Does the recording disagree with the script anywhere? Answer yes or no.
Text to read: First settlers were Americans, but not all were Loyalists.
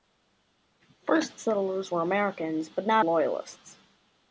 yes